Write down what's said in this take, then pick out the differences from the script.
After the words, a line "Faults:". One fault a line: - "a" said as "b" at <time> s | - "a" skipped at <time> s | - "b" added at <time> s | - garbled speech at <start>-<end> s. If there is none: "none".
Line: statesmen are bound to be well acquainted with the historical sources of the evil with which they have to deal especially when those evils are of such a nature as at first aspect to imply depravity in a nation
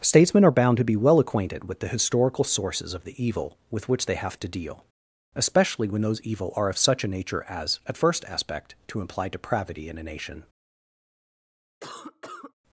statesmen are bound to be well acquainted with the historical sources of the evil with which they have to deal especially when those evil are of such a nature as at first aspect to imply depravity in a nation
Faults:
- "evils" said as "evil" at 6.2 s